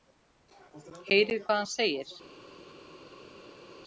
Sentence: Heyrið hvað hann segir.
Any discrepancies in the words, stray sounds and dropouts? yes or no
no